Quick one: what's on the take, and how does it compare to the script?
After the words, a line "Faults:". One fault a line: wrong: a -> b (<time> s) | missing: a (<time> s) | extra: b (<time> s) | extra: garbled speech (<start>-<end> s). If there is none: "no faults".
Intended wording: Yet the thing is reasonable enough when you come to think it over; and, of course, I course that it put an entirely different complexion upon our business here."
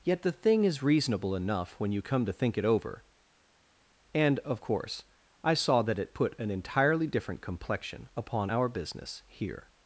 Yet the thing is reasonable enough when you come to think it over; and, of course, I saw that it put an entirely different complexion upon our business here."
Faults:
wrong: course -> saw (5.5 s)